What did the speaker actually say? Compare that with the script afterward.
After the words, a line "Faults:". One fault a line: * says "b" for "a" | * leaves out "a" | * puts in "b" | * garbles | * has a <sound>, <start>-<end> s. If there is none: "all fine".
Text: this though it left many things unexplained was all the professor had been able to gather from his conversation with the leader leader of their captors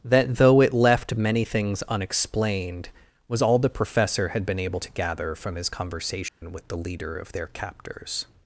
that though it left many things unexplained was all the professor had been able to gather from his conversation with the leader of their captors
Faults:
* says "that" for "this"
* has a dropout, 6.3-6.4 s
* leaves out "leader"